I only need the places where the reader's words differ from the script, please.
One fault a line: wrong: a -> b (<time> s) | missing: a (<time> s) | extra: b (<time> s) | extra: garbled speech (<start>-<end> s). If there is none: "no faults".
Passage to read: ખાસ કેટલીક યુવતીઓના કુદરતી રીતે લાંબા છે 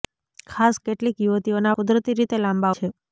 no faults